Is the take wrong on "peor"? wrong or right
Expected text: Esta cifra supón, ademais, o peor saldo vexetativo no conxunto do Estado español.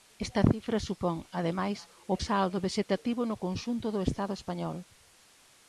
wrong